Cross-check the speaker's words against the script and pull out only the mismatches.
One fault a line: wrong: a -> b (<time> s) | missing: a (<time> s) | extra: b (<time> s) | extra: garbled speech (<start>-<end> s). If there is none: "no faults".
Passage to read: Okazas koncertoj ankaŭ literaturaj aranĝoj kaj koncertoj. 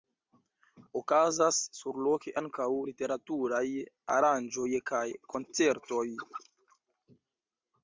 wrong: koncertoj -> surloke (1.8 s)